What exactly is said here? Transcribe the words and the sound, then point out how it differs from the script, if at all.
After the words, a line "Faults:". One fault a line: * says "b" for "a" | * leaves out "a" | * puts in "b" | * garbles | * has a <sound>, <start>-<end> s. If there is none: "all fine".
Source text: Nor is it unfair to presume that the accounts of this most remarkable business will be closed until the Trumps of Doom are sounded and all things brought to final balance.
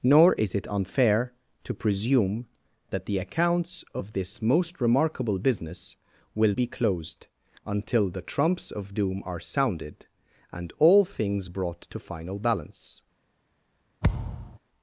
Nor is it unfair to presume that the accounts of this most remarkable business will be closed until the Trumps of Doom are sounded and all things brought to final balance.
Faults:
* has a thud, 14.0-14.6 s